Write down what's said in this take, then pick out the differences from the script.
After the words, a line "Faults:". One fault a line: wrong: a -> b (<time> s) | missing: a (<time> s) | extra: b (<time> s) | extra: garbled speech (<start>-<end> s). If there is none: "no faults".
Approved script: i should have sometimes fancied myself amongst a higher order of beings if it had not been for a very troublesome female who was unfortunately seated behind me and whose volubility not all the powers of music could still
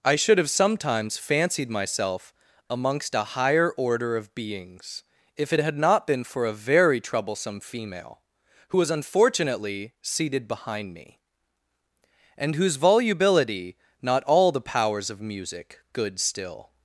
i should have sometimes fancied myself amongst a higher order of beings if it had not been for a very troublesome female who was unfortunately seated behind me and whose volubility not all the powers of music good still
Faults:
wrong: could -> good (15.9 s)